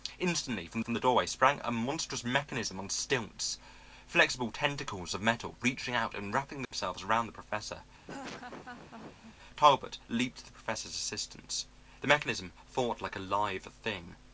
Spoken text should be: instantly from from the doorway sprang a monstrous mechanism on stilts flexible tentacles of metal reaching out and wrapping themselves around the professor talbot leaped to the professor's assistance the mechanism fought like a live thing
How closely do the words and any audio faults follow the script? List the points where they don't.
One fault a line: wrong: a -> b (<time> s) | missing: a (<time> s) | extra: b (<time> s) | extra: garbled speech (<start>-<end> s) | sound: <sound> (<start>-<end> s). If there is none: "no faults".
sound: dropout (6.7-6.7 s)
sound: laugh (8.1-9.4 s)